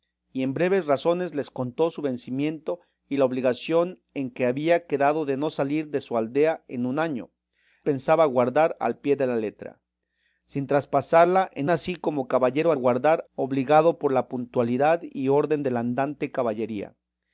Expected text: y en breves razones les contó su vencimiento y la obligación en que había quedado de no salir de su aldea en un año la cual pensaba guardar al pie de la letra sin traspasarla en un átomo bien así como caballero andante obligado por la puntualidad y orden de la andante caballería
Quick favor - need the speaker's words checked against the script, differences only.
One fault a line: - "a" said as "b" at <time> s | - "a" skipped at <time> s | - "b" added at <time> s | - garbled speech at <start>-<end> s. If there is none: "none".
- "la cual" skipped at 7.3 s
- "un átomo bien" skipped at 11.7 s
- "andante" said as "guardar" at 12.7 s